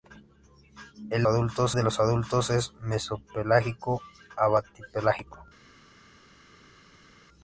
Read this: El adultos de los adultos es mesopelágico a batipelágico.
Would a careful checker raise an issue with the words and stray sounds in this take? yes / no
no